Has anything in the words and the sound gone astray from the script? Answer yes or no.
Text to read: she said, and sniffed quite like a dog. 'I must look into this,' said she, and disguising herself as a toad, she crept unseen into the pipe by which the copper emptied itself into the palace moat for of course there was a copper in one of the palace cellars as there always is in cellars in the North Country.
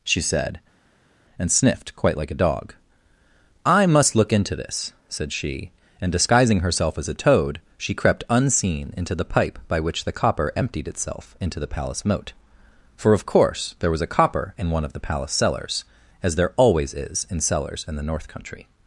no